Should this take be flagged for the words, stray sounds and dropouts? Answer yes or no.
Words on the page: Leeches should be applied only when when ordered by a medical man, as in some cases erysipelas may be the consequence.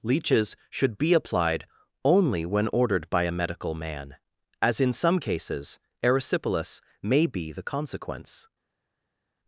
yes